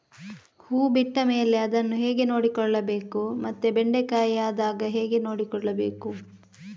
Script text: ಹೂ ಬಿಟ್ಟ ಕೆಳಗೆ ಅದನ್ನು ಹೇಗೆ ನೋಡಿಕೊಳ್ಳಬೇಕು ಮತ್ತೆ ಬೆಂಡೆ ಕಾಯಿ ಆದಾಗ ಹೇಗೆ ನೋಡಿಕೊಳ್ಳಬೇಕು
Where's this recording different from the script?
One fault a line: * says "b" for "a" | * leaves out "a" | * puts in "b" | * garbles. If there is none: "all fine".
* says "ಮೇಲೆ" for "ಕೆಳಗೆ"